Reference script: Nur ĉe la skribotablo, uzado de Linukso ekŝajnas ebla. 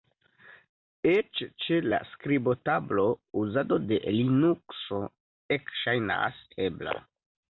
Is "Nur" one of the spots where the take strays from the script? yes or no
yes